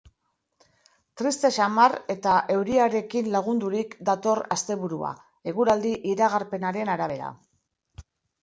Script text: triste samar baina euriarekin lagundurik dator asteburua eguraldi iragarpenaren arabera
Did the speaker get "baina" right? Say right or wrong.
wrong